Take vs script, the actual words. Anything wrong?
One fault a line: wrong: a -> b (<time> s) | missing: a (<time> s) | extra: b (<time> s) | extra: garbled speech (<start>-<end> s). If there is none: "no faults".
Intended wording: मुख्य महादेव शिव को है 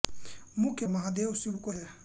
no faults